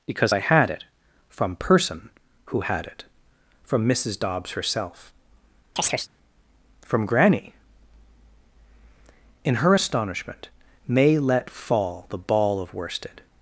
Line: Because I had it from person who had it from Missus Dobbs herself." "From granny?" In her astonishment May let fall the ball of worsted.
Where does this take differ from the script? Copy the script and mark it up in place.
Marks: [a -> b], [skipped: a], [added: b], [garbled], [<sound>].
Because I had it from person who had it from Missus Dobbs herself." [chirp] "From granny?" In her astonishment May let fall the ball of worsted.